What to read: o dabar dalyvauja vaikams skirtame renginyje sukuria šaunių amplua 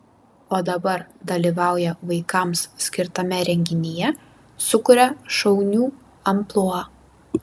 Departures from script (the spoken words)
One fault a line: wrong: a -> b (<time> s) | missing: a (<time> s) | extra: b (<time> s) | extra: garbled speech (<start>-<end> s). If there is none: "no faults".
no faults